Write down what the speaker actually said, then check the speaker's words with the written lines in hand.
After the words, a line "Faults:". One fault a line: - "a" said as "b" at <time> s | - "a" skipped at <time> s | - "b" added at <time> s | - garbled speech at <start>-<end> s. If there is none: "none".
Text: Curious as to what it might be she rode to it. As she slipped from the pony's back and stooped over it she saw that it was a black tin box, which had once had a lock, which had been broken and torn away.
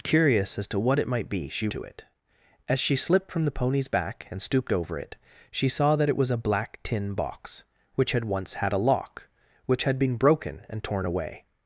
Curious as to what it might be she to it. As she slipped from the pony's back and stooped over it she saw that it was a black tin box, which had once had a lock, which had been broken and torn away.
Faults:
- "rode" skipped at 1.7 s